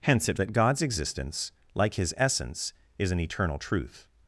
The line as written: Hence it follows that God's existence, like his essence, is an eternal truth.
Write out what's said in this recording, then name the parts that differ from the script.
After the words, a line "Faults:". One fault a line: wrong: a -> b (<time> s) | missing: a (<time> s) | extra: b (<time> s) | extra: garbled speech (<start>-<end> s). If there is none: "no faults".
Hence it that God's existence, like his essence, is an eternal truth.
Faults:
missing: follows (0.4 s)